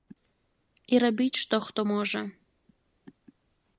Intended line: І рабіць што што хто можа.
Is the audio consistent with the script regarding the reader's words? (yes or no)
no